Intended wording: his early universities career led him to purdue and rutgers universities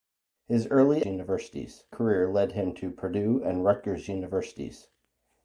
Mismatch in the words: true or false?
false